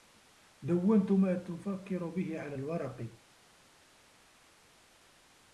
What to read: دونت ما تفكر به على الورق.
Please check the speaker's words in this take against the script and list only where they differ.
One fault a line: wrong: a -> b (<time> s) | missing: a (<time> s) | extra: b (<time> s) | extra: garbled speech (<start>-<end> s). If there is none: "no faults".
no faults